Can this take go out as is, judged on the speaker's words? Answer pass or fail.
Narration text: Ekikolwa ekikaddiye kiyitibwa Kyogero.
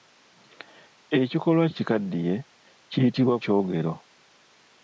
pass